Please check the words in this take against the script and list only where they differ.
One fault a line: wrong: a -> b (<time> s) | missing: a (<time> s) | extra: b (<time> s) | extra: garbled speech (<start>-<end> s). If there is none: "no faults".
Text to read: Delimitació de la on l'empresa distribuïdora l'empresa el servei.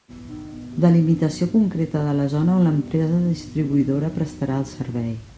extra: concreta (1.5 s)
extra: zona (2.3 s)
wrong: l'empresa -> prestarà (4.2 s)